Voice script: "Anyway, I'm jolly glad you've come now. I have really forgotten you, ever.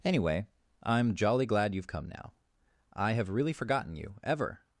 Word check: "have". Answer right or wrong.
right